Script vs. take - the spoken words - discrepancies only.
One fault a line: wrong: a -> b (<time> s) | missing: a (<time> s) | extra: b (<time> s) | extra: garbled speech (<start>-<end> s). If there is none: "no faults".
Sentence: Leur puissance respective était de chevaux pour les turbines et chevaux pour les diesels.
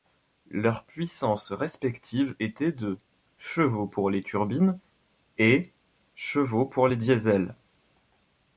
no faults